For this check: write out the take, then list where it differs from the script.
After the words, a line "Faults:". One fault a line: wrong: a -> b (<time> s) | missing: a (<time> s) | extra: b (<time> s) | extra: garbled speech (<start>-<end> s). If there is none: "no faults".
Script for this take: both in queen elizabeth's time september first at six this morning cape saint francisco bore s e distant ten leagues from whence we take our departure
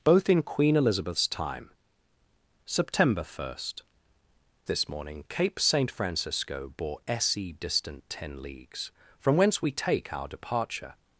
both in queen elizabeth's time september first this morning cape saint francisco bore s e distant ten leagues from whence we take our departure
Faults:
missing: at six (3.8 s)